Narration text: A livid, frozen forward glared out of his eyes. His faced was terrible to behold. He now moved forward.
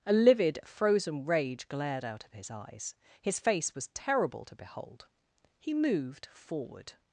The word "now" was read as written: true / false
false